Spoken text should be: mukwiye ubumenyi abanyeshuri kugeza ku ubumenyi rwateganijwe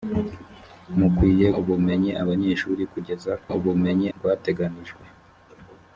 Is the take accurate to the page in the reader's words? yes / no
yes